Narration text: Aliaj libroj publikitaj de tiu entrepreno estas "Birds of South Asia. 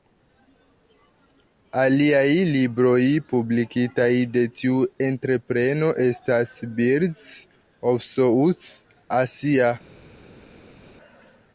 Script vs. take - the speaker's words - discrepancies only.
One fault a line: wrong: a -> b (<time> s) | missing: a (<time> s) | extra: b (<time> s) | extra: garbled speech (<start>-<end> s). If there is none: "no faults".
no faults